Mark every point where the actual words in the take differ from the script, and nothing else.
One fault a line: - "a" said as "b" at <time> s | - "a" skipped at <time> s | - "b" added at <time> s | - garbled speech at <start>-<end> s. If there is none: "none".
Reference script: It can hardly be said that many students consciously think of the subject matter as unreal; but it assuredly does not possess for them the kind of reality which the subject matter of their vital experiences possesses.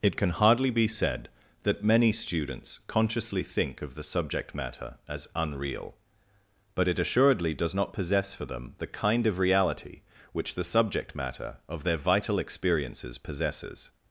none